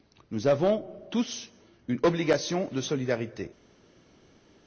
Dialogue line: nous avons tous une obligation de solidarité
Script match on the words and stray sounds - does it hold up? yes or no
yes